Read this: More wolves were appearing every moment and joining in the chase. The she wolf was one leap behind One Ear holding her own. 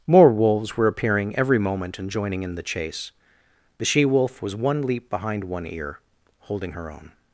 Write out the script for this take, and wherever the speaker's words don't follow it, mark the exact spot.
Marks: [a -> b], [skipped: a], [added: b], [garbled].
More wolves were appearing every moment and joining in the chase. The she wolf was one leap behind One Ear holding her own.